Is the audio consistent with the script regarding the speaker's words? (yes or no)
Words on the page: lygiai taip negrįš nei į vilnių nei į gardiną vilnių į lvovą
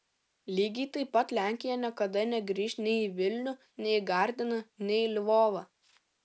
no